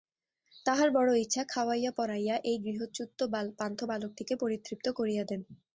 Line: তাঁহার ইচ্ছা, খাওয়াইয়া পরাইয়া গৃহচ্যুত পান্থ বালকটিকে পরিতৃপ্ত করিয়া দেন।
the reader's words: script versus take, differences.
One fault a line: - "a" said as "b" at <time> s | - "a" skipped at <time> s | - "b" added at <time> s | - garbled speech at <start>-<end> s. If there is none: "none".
- "বড়ো" added at 0.9 s
- "এই" added at 2.4 s